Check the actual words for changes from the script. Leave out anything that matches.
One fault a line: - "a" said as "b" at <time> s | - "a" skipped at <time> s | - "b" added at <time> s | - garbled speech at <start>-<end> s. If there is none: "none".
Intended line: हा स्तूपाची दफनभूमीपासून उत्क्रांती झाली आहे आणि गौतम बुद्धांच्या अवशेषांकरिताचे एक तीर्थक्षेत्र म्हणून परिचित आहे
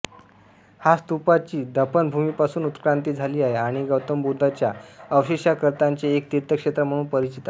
none